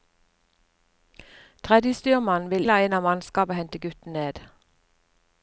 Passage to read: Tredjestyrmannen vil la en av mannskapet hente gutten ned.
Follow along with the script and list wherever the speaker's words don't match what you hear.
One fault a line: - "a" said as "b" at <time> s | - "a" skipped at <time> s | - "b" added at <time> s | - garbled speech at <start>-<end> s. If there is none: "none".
none